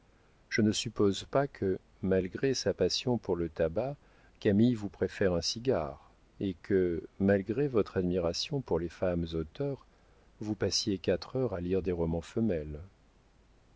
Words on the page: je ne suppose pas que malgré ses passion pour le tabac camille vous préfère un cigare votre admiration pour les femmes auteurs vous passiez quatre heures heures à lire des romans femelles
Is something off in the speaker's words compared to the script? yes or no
yes